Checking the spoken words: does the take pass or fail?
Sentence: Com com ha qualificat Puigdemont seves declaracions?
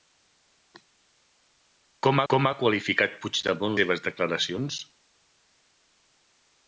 pass